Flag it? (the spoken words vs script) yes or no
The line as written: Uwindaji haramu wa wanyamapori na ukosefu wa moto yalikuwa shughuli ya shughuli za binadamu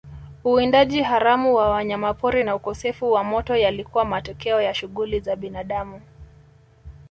yes